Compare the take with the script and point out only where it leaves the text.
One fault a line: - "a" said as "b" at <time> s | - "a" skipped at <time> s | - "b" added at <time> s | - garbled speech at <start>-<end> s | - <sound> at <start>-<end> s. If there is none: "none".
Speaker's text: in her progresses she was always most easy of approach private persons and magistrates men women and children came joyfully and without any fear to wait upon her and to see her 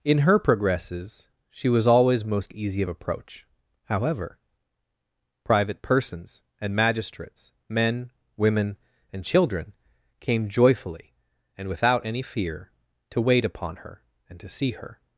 - "however" added at 3.8 s